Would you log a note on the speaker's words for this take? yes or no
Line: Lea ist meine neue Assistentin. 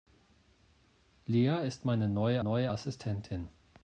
yes